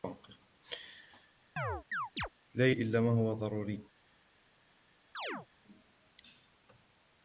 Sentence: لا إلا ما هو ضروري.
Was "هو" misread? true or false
false